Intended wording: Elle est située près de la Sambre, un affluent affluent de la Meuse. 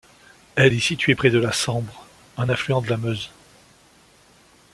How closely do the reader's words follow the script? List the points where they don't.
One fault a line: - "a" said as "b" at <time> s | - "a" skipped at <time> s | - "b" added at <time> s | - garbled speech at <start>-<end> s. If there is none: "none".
- "affluent" skipped at 2.8 s